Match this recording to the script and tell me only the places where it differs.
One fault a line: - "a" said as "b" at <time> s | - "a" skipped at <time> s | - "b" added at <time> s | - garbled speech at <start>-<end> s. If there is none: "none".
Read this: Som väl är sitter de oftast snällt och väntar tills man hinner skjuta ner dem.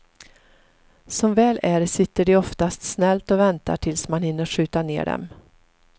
none